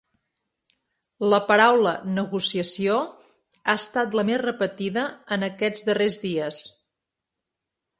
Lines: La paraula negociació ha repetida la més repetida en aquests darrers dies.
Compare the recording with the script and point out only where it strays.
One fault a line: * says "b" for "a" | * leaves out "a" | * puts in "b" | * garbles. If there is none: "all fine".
* says "estat" for "repetida"